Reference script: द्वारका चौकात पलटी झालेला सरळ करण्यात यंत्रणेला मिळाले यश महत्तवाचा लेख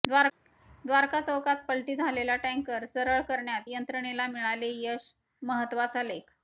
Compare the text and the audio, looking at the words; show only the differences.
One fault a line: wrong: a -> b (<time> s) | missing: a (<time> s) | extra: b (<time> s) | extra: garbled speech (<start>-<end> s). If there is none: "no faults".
extra: टँकर (2.4 s)